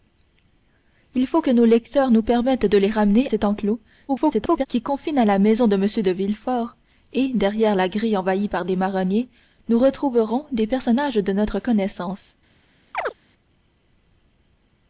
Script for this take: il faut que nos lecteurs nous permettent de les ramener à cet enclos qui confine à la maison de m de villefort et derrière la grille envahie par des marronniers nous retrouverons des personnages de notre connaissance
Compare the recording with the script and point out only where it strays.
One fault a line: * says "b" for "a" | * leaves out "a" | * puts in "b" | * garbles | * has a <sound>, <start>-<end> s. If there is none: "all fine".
* leaves out "à"
* garbles
* has a chirp, 12.9-13.1 s